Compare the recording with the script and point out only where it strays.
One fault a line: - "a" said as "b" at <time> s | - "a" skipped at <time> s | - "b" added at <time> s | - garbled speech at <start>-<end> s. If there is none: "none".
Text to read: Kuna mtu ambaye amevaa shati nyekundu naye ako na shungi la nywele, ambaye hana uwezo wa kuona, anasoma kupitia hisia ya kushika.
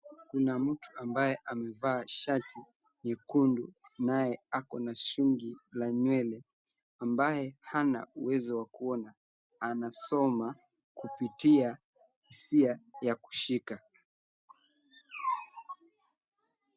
none